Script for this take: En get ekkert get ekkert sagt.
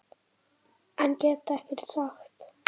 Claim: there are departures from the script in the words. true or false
true